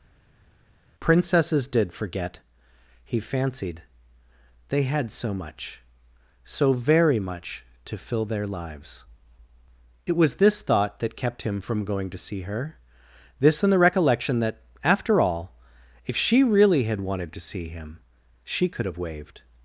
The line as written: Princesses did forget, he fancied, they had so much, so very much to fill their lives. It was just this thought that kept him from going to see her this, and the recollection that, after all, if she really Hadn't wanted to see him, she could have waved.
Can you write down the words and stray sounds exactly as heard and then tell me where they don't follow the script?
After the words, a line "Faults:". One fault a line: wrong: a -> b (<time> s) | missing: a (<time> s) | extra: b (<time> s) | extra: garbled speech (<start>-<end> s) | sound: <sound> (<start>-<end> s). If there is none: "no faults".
Princesses did forget, he fancied, they had so much, so very much to fill their lives. It was this thought that kept him from going to see her this, and the recollection that, after all, if she really HAD wanted to see him, she could have waved.
Faults:
missing: just (10.4 s)
wrong: Hadn't -> HAD (16.8 s)